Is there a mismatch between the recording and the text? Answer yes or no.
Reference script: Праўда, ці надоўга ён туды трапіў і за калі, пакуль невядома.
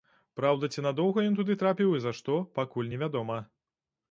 yes